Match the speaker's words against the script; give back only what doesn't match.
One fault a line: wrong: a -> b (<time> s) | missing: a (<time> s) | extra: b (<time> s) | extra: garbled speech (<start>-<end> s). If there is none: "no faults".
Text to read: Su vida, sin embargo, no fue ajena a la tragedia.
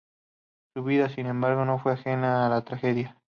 no faults